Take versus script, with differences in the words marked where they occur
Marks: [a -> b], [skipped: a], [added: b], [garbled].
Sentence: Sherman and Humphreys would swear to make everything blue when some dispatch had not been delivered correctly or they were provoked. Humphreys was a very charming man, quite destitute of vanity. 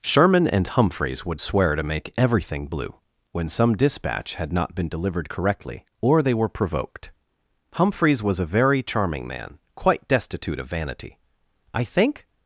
Sherman and Humphreys would swear to make everything blue when some dispatch had not been delivered correctly or they were provoked. Humphreys was a very charming man, quite destitute of vanity. [added: I think]